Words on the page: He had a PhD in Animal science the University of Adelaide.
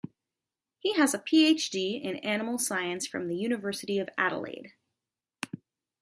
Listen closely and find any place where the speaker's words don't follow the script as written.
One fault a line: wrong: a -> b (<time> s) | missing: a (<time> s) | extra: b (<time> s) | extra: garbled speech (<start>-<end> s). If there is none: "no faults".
wrong: had -> has (0.9 s)
extra: from (3.1 s)